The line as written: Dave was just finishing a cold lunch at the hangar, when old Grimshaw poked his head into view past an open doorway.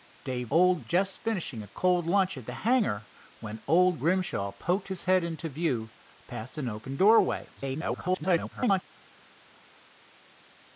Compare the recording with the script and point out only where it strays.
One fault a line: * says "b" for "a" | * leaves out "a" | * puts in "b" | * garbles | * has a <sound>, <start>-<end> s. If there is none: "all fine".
* says "old" for "was"
* garbles